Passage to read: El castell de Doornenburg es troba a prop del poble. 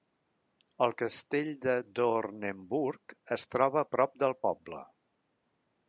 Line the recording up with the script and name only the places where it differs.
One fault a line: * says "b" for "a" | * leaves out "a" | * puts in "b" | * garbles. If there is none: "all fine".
all fine